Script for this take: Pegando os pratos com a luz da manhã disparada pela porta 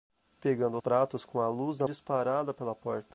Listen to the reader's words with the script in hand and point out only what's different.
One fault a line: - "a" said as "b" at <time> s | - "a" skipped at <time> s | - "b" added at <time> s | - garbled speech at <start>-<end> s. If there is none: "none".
- "os" skipped at 0.8 s
- "manhã" skipped at 1.9 s